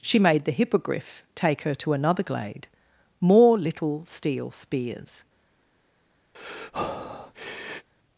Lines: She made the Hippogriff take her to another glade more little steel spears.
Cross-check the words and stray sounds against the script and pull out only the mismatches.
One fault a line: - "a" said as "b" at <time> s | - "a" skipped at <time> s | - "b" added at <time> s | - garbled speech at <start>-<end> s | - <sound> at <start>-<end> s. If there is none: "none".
- breath at 6.3-7.9 s